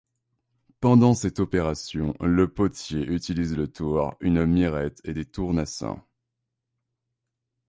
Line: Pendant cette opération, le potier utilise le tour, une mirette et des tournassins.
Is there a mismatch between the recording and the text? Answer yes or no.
no